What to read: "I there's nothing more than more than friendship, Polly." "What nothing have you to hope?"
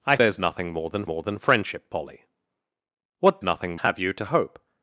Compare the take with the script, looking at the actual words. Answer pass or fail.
pass